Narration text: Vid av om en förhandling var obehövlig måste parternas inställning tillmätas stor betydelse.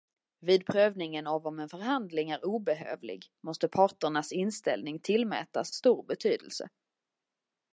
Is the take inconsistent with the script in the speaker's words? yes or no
yes